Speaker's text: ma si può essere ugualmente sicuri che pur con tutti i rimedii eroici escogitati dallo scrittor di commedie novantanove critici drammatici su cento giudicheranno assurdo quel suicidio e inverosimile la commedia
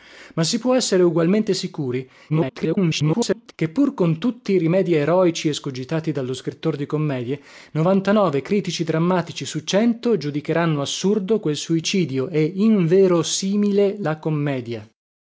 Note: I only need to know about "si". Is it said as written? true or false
true